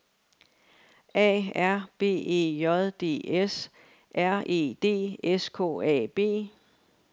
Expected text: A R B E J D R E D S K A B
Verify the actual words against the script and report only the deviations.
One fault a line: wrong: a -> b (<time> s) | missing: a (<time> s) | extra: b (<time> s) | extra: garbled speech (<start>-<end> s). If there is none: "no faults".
extra: S (3.4 s)